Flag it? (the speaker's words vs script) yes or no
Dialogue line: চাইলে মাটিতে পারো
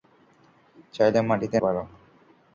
no